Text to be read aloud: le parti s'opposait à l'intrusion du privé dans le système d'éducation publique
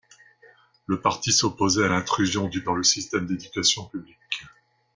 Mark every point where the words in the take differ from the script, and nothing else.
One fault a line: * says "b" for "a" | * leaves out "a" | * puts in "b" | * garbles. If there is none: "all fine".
* leaves out "privé"